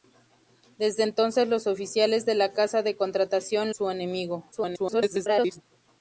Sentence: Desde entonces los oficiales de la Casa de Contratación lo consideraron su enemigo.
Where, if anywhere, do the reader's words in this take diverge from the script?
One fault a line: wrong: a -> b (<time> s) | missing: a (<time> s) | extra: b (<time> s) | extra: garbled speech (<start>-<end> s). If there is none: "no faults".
missing: lo consideraron (3.7 s)
extra: garbled speech (4.5-5.6 s)